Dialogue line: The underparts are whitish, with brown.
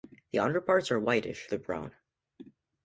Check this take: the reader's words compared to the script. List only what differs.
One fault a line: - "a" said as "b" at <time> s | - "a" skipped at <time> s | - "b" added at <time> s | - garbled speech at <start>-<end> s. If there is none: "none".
none